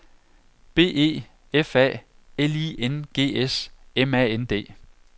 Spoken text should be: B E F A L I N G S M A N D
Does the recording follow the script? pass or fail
pass